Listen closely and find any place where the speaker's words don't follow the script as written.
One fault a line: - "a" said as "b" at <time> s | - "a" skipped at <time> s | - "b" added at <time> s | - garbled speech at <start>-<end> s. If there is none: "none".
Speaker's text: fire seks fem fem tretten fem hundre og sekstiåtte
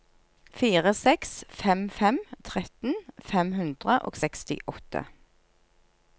none